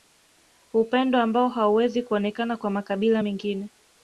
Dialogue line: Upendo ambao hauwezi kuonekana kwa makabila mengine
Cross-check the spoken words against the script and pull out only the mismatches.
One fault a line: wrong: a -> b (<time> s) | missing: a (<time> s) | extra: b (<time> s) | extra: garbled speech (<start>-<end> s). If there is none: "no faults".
no faults